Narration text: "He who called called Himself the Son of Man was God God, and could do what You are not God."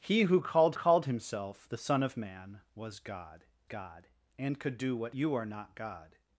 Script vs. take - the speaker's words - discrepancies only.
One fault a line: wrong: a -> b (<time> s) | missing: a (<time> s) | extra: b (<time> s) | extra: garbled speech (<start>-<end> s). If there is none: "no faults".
no faults